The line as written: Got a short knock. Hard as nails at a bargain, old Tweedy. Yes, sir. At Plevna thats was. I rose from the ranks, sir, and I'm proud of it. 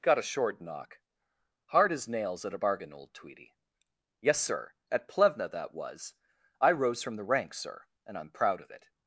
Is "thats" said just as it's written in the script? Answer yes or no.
no